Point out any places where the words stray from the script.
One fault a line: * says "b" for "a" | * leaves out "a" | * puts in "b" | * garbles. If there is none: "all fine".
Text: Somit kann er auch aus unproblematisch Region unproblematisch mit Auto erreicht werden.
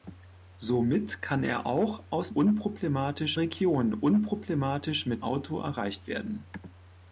all fine